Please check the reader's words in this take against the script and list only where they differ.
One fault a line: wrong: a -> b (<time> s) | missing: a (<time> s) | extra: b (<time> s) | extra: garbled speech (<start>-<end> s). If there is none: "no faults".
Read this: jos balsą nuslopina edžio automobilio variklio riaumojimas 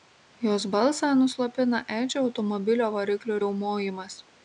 no faults